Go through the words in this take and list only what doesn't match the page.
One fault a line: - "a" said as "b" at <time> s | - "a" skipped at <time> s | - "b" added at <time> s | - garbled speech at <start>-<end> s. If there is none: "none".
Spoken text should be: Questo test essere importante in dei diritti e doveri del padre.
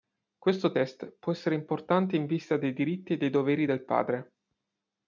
- "può" added at 1.2 s
- "vista" added at 2.2 s
- "dei" added at 3.2 s